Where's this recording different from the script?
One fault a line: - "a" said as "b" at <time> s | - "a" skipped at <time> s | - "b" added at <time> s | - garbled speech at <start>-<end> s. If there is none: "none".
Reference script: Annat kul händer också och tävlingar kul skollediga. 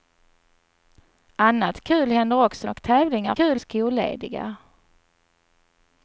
none